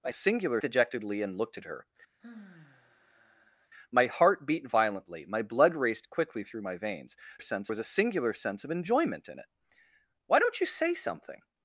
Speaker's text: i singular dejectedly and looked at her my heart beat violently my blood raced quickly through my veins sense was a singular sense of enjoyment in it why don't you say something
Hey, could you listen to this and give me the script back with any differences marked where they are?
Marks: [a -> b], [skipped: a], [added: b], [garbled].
i singular dejectedly and looked at her my heart beat violently my blood raced quickly through my veins sense was a singular sense of enjoyment in it why don't you say something